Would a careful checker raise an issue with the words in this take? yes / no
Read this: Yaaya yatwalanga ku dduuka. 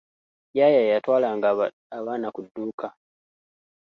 yes